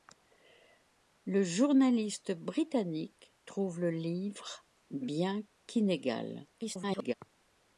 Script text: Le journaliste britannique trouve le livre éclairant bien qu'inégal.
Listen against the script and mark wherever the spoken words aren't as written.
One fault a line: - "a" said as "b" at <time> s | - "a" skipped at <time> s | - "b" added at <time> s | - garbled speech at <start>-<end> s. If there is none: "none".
- "éclairant" skipped at 4.7 s
- garbled speech at 6.5-7.1 s